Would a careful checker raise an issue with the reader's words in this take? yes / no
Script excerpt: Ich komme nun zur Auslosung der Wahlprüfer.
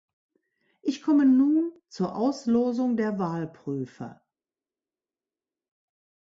no